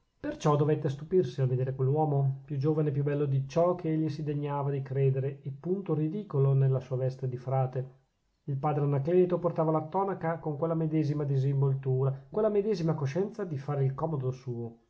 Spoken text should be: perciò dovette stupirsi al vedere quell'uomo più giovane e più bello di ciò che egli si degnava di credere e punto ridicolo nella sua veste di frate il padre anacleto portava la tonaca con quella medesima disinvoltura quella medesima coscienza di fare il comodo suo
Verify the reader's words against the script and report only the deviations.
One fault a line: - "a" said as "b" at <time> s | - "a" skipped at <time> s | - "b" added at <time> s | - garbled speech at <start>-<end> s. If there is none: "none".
none